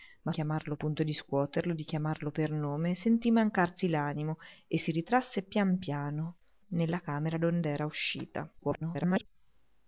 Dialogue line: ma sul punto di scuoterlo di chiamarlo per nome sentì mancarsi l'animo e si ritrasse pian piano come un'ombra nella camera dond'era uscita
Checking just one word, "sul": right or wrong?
wrong